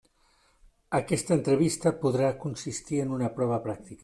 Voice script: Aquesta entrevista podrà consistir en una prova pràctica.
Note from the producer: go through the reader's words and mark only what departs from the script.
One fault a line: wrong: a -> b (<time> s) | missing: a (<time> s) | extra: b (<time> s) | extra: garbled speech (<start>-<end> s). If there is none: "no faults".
no faults